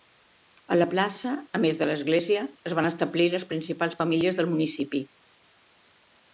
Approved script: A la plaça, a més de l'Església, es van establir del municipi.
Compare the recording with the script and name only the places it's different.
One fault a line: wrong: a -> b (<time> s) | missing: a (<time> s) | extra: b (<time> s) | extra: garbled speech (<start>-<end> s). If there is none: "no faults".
extra: les principals famílies (3.4 s)